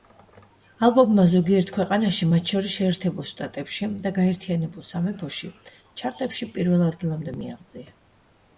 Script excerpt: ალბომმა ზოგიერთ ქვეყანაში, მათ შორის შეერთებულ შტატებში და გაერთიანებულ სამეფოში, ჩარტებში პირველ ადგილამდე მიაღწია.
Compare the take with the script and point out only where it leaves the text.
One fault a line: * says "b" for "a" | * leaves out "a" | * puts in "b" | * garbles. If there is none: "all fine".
all fine